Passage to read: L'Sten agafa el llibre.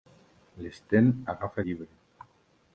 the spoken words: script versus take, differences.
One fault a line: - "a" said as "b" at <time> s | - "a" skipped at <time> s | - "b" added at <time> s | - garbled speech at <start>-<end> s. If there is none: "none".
- "el" skipped at 1.6 s